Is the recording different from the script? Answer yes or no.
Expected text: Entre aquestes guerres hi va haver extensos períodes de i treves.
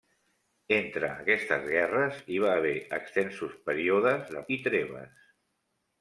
no